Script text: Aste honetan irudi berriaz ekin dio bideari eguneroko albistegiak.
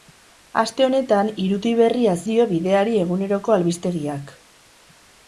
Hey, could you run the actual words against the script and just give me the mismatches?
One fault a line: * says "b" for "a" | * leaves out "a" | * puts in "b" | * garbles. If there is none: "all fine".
* leaves out "ekin"